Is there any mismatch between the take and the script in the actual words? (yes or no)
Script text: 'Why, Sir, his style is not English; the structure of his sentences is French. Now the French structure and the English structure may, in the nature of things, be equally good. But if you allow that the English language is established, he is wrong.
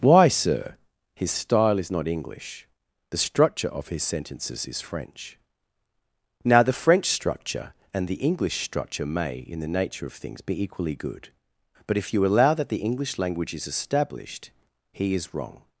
no